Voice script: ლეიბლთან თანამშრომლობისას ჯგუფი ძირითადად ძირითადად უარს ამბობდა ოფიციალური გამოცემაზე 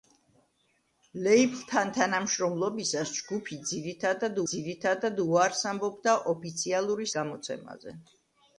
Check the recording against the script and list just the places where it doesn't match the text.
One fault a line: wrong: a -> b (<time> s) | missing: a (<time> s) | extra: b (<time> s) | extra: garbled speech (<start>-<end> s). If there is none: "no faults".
no faults